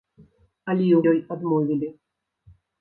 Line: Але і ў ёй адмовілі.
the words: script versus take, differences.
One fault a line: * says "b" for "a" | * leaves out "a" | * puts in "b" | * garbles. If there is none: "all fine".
all fine